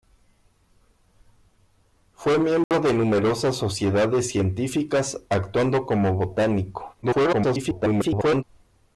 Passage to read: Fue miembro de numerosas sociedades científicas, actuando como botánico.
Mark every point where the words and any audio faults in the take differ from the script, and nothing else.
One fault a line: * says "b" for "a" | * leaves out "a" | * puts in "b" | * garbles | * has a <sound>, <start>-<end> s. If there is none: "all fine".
* has a dropout, 2.6-2.7 s
* garbles